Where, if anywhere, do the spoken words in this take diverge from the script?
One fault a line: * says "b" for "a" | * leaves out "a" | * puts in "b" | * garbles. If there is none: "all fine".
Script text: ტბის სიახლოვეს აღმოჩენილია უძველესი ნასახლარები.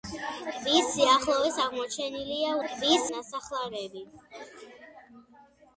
* says "ტბის" for "უძველესი"